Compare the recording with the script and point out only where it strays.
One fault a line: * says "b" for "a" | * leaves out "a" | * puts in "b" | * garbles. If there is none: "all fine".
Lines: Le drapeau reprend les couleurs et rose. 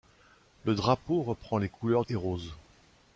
all fine